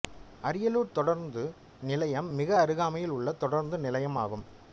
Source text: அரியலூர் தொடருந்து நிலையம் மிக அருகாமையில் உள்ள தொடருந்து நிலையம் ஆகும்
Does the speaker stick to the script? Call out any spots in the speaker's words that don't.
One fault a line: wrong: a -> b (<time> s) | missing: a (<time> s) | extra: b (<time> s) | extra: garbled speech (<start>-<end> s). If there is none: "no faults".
no faults